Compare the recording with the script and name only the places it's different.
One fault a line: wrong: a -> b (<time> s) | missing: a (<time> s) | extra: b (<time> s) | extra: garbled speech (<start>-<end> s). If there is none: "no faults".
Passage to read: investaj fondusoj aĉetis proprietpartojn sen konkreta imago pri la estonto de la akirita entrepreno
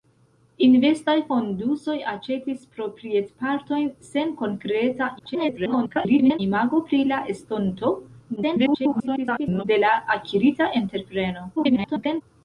extra: garbled speech (5.2-6.4 s)
extra: garbled speech (8.4-9.6 s)
extra: garbled speech (11.6-12.2 s)